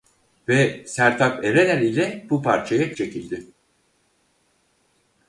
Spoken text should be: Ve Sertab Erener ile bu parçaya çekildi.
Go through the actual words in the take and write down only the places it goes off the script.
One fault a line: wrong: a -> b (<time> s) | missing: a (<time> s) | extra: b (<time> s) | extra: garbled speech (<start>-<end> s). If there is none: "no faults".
no faults